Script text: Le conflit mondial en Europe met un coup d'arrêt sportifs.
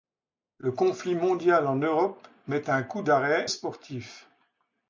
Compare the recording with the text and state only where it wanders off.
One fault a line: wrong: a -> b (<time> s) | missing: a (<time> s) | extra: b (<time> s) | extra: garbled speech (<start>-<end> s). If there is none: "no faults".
no faults